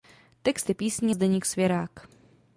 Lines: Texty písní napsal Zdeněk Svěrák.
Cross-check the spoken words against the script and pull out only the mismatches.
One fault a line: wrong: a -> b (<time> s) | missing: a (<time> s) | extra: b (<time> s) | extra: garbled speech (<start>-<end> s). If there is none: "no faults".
missing: napsal (1.1 s)